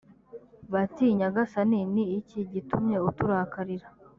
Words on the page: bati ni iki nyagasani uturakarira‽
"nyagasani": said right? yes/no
no